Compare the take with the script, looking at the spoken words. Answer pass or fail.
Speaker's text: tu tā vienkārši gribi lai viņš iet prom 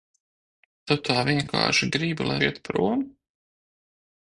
fail